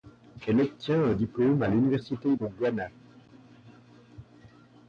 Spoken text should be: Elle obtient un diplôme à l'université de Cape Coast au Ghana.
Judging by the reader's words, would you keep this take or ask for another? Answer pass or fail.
fail